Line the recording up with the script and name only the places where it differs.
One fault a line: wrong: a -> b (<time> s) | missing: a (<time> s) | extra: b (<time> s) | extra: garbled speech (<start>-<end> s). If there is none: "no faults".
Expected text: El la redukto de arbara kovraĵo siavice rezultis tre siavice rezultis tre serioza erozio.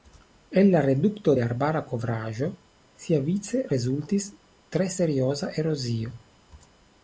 missing: siavice rezultis tre (4.9 s)